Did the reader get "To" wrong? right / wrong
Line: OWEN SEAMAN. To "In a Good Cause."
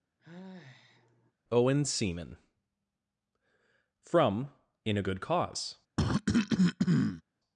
wrong